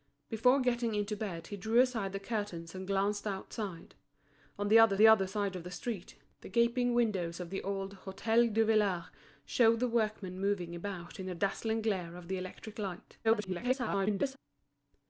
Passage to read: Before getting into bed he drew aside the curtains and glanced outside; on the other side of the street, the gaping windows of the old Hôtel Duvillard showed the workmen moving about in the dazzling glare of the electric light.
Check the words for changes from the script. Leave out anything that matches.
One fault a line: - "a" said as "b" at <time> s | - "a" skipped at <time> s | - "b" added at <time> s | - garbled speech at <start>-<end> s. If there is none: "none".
- "the other" added at 5.0 s
- garbled speech at 13.2-14.4 s